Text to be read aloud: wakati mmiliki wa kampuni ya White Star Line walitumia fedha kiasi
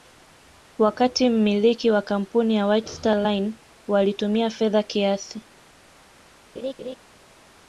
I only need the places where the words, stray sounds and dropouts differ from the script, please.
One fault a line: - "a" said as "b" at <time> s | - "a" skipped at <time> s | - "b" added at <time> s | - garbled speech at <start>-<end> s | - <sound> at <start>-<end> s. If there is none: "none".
- laugh at 6.6-7.0 s